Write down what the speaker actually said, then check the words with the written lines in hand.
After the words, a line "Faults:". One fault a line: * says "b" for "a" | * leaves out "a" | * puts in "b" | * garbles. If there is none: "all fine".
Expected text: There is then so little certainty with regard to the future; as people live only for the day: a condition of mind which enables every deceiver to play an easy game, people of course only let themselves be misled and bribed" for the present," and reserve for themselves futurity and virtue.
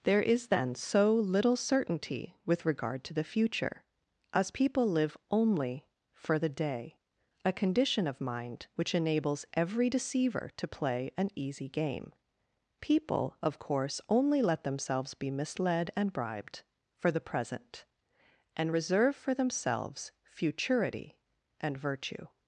There is then so little certainty with regard to the future; as people live only for the day: a condition of mind which enables every deceiver to play an easy game, people of course only let themselves be misled and bribed" for the present," and reserve for themselves futurity and virtue.
Faults:
all fine